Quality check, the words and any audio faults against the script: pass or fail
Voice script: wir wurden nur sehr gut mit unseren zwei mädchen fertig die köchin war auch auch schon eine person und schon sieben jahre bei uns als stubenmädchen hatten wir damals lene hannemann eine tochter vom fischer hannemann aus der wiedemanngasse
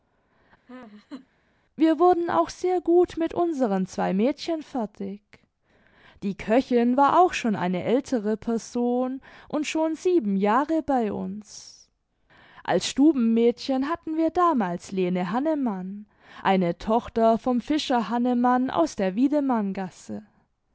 fail